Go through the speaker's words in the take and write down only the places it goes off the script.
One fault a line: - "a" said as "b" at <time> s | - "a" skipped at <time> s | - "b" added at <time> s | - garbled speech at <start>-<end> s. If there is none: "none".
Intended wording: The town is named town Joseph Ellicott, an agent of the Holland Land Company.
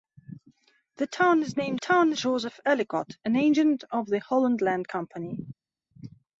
none